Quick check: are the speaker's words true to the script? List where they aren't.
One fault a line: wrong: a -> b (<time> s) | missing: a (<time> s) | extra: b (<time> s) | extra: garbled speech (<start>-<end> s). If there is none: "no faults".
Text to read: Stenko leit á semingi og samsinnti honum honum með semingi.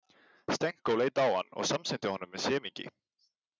wrong: semingi -> hann (1.4 s)
missing: honum (2.4 s)